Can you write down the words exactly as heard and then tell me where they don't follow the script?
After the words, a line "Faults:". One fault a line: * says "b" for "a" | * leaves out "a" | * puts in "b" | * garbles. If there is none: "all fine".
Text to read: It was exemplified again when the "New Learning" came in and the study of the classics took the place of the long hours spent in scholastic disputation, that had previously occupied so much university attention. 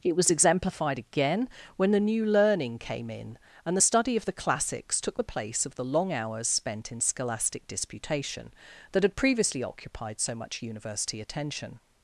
It was exemplified again when the "New Learning" came in and the study of the classics took the place of the long hours spent in scholastic disputation, that had previously occupied so much university attention.
Faults:
all fine